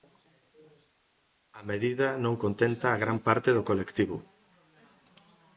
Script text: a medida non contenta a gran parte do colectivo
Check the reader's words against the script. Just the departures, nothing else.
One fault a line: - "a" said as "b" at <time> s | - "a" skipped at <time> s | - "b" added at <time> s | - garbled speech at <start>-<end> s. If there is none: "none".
none